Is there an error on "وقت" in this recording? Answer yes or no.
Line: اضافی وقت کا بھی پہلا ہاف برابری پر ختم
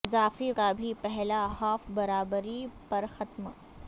yes